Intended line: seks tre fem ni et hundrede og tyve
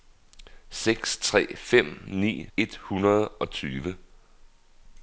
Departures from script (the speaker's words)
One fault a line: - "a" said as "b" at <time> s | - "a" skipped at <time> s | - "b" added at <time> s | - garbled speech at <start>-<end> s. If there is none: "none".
none